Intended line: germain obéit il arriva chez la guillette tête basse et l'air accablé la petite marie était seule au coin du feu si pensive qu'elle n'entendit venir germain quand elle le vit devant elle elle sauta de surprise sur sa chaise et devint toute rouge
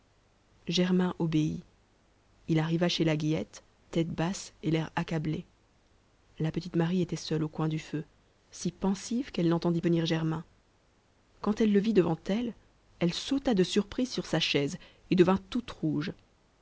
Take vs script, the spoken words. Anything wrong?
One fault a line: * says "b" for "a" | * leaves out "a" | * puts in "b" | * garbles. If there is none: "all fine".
all fine